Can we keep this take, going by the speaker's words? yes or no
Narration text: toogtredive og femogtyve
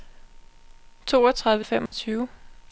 yes